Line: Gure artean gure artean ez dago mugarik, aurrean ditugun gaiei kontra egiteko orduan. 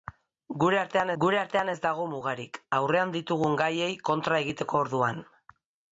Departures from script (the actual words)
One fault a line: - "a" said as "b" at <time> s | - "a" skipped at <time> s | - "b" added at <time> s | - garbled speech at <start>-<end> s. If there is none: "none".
none